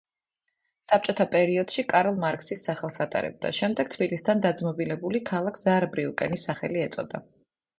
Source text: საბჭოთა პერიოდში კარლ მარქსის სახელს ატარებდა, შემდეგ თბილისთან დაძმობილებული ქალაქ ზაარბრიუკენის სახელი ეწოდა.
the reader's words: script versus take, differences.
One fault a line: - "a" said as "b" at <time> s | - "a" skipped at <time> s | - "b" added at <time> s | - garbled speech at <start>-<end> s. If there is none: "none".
none